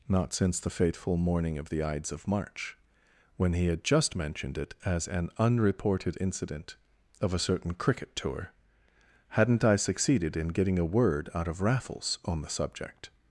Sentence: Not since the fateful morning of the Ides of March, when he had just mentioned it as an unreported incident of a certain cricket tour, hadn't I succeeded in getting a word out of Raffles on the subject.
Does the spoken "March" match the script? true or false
true